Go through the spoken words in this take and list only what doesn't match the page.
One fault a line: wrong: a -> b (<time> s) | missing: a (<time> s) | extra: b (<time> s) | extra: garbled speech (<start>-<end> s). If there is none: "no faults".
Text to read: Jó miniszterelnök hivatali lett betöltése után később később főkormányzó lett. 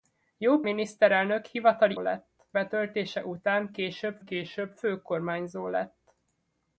no faults